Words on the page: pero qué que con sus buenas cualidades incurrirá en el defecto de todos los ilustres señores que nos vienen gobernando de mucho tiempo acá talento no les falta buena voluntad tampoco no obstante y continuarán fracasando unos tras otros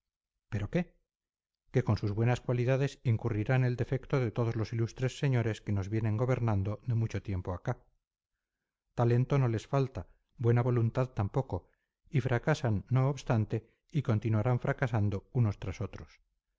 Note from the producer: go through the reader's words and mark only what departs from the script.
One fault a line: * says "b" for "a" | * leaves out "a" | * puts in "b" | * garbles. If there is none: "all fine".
* puts in "y fracasan"